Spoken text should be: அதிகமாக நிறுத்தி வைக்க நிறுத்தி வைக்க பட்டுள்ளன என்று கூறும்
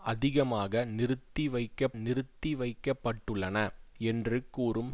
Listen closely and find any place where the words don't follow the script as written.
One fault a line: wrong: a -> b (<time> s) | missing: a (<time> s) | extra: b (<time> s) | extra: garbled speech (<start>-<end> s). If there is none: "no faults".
no faults